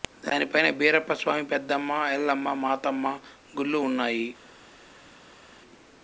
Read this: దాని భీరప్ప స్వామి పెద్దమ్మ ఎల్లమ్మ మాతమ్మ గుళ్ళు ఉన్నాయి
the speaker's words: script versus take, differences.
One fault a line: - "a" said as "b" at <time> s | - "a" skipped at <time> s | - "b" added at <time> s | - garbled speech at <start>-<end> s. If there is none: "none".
- "పైన" added at 0.5 s